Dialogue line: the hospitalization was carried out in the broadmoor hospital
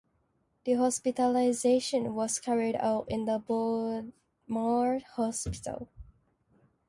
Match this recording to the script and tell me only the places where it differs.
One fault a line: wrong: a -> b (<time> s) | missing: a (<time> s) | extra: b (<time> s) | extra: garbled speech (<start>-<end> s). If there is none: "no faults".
no faults